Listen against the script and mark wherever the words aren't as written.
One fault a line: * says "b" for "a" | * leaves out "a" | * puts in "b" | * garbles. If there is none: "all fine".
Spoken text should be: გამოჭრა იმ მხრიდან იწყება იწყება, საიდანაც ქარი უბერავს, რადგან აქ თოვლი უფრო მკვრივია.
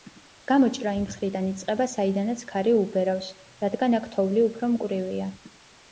* leaves out "იწყება"